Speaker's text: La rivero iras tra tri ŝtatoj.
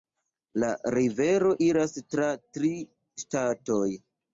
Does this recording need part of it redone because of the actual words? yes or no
no